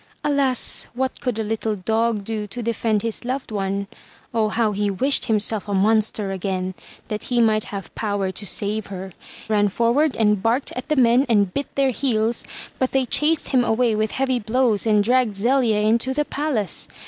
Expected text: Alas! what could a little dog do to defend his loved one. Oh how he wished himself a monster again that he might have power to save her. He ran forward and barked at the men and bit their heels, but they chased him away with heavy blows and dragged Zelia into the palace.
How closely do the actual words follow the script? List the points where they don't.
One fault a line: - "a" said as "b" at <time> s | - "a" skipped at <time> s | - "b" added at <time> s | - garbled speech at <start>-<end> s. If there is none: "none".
- "He" skipped at 9.1 s